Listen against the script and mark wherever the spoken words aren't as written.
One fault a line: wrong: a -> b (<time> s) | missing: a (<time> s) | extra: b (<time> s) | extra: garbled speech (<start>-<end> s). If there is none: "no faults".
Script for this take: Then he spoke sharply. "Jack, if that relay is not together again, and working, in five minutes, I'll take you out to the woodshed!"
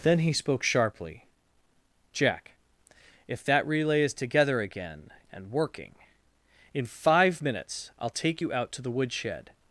missing: not (4.1 s)